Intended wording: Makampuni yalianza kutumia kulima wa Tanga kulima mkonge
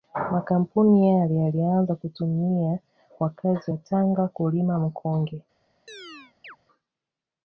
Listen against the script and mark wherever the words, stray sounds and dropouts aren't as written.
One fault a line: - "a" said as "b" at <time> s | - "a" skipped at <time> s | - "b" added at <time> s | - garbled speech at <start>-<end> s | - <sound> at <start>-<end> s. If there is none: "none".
- "yale" added at 1.1 s
- "kulima" said as "wakazi" at 3.2 s
- chirp at 5.9-6.6 s